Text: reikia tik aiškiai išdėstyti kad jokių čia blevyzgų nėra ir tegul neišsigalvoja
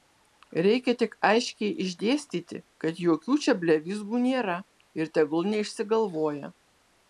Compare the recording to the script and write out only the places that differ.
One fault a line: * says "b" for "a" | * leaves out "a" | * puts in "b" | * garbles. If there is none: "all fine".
all fine